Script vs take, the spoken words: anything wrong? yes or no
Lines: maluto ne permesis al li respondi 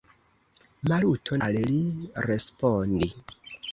yes